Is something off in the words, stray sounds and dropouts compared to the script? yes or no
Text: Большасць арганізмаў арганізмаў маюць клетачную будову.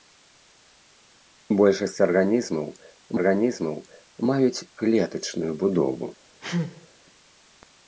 yes